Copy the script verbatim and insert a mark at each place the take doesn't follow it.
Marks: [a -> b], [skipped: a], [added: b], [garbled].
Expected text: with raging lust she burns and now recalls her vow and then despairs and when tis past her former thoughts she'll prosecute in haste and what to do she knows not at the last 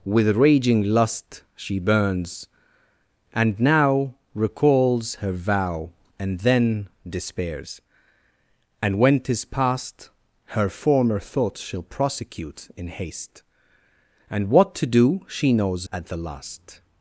with raging lust she burns and now recalls her vow and then despairs and when tis past her former thoughts she'll prosecute in haste and what to do she knows [skipped: not] at the last